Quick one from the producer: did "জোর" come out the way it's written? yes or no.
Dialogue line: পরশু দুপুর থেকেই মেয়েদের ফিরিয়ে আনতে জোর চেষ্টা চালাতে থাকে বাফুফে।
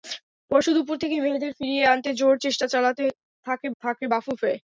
yes